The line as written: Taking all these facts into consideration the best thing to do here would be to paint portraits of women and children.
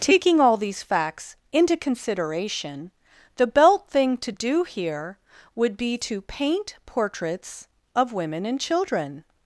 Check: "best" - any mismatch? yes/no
yes